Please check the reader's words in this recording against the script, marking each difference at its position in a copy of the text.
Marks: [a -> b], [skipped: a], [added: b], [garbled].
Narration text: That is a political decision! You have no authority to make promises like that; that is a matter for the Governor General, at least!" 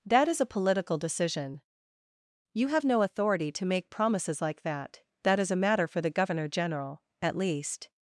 That is a political decision! You have no authority to make promises like that; that is a matter for the Governor General, at least!"